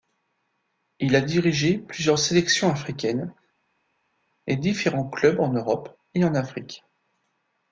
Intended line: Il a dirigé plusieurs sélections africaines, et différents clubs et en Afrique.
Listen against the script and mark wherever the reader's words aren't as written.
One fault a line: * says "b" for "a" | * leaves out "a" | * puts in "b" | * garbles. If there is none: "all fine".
* puts in "en Europe"